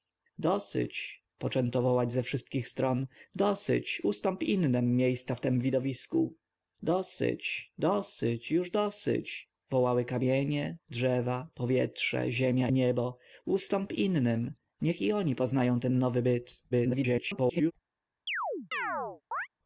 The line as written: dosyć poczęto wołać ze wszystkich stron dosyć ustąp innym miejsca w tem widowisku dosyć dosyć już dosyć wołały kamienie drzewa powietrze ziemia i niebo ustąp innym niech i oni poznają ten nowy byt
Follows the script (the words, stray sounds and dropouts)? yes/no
no